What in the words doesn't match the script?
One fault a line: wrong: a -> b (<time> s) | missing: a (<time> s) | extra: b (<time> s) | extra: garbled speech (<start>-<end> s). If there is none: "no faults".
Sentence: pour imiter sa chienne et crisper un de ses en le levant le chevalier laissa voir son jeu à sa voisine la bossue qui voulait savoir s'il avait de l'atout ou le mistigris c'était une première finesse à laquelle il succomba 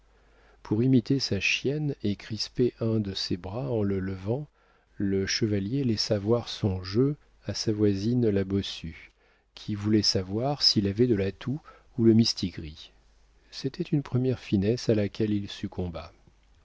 extra: bras (3.3 s)